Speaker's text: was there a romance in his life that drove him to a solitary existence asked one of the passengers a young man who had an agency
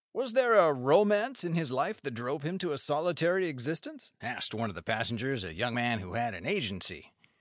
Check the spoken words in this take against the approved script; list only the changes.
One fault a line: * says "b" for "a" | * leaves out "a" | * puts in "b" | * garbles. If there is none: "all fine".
all fine